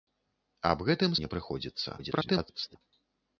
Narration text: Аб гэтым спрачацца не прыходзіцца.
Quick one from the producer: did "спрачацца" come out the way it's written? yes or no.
no